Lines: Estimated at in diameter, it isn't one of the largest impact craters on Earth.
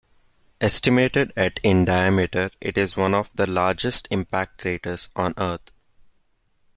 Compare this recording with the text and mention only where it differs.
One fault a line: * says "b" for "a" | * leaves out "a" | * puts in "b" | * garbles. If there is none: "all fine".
* says "is" for "isn't"